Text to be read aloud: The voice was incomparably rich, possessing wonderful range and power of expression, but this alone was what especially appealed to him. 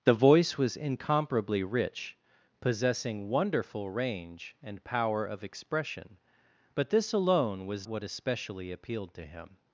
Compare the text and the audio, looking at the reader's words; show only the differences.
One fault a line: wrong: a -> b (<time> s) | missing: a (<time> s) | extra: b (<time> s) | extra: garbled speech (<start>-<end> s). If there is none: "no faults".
no faults